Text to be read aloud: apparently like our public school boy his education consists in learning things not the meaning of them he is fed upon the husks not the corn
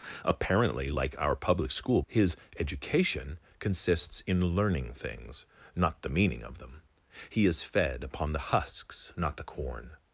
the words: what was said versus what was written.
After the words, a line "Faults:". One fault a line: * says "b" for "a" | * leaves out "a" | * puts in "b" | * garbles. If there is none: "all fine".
apparently like our public school his education consists in learning things not the meaning of them he is fed upon the husks not the corn
Faults:
* leaves out "boy"